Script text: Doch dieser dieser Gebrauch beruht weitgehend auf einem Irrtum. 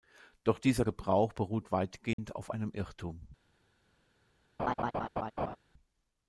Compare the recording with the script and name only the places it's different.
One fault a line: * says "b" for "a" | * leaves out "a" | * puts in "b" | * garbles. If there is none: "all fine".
* leaves out "dieser"